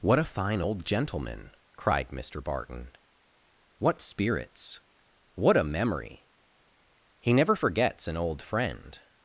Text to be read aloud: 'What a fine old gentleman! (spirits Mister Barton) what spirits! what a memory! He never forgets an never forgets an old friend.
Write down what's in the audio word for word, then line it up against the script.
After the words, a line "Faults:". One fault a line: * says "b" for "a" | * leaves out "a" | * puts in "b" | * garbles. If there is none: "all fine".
'What a fine old gentleman! (cried Mister Barton) what spirits! what a memory! He never forgets an old friend.
Faults:
* says "cried" for "spirits"
* leaves out "never forgets an"